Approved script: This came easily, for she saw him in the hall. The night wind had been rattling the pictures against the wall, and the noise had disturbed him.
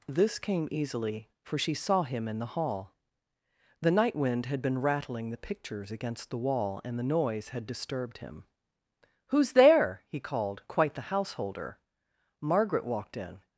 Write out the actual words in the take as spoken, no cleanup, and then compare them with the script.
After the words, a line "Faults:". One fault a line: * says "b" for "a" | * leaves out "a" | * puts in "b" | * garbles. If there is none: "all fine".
This came easily, for she saw him in the hall. The night wind had been rattling the pictures against the wall, and the noise had disturbed him. "Who's there?" he called, quite the householder. Margaret walked in
Faults:
* puts in "Who's there he called quite the householder Margaret walked in"